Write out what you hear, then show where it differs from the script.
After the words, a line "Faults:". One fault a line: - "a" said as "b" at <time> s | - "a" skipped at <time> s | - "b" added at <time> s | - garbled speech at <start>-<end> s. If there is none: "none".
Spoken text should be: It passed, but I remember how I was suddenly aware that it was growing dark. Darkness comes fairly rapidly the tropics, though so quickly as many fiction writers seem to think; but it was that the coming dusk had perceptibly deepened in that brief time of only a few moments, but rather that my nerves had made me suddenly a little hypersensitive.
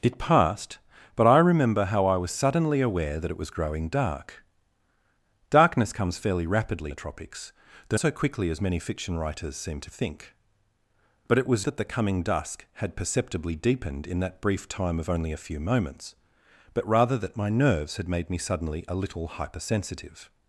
It passed, but I remember how I was suddenly aware that it was growing dark. Darkness comes fairly rapidly the tropics, though so quickly as many fiction writers seem to think; but it was that the coming dusk had perceptibly deepened in that brief time of only a few moments, but rather that my nerves had made me suddenly a little hypersensitive.
Faults:
none